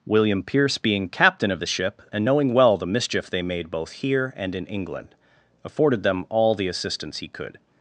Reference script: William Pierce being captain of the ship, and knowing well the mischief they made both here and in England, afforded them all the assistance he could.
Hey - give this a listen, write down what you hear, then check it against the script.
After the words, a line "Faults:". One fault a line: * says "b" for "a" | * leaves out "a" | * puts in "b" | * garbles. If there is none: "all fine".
William Pierce being captain of the ship, and knowing well the mischief they made both here and in England, afforded them all the assistance he could.
Faults:
all fine